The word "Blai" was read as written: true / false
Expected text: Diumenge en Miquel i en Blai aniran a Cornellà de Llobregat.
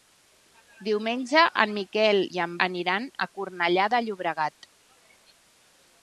false